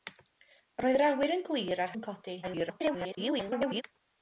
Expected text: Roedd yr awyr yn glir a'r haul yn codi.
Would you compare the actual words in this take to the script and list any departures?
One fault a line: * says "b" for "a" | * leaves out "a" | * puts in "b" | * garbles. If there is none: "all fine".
* leaves out "haul"
* garbles